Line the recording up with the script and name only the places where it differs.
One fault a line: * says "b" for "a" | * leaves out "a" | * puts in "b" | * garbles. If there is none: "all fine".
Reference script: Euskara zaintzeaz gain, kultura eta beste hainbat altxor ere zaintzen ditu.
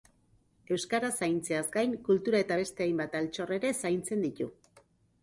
all fine